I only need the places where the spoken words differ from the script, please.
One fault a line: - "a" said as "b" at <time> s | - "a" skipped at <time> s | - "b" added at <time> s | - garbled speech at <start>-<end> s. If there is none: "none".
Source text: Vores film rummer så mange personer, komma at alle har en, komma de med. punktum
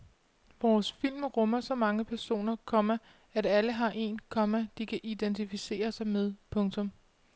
- "kan identificere sig" added at 4.9 s